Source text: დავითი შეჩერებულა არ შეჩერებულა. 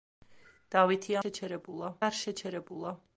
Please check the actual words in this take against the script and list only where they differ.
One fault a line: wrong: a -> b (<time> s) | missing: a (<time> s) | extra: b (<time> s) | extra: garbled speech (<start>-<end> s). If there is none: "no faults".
no faults